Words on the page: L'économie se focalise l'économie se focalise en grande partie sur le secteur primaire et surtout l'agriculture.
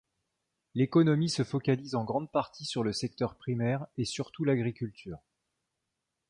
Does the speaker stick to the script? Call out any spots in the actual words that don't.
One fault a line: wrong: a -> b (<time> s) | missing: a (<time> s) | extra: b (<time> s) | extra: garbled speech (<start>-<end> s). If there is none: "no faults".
missing: l'économie se focalise (1.9 s)